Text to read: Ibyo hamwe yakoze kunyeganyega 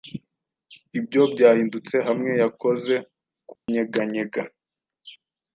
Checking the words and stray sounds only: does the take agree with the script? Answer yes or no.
no